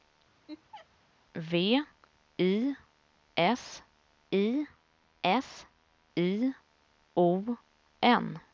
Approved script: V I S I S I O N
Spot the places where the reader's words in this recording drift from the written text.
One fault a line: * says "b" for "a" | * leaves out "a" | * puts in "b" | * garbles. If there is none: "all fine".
all fine